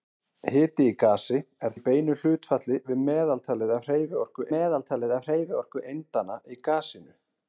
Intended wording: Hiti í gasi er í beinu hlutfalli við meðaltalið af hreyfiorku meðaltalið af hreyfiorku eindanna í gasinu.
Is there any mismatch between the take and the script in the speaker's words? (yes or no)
no